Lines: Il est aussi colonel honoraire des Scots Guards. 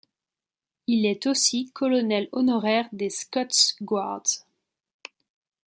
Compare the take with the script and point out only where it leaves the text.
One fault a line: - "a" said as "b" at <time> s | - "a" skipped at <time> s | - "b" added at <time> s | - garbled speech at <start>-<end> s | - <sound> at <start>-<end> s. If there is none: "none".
none